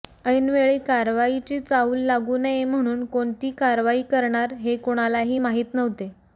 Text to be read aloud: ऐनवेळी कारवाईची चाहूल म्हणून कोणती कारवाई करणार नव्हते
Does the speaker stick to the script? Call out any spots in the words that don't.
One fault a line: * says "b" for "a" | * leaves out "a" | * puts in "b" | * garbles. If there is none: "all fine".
* puts in "लागू नये"
* puts in "हे कुणालाही माहीत"